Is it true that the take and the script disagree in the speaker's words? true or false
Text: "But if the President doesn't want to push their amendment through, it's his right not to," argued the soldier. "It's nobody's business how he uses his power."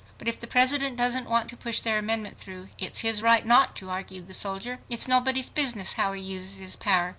false